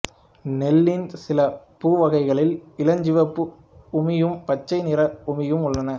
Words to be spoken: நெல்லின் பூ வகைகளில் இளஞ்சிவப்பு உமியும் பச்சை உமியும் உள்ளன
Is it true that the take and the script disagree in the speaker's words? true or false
true